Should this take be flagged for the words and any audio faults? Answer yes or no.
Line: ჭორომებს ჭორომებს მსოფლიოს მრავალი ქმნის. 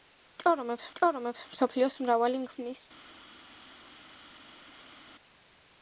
no